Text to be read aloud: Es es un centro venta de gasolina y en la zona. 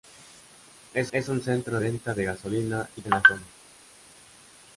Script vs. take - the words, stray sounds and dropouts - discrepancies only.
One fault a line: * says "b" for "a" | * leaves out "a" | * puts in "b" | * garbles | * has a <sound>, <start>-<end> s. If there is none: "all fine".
all fine